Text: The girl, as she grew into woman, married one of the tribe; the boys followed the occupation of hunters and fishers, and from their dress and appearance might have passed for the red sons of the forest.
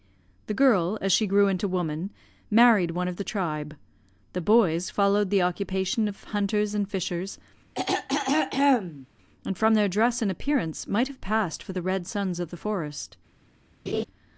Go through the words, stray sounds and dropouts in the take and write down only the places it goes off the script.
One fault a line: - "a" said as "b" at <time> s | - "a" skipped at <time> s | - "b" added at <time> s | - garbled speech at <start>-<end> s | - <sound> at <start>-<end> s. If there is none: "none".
- throat clearing at 7.7-9.1 s
- laugh at 13.9-14.0 s